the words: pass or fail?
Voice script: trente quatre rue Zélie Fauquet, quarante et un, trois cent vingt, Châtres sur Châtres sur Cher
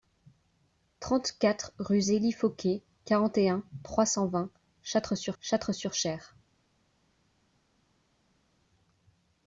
pass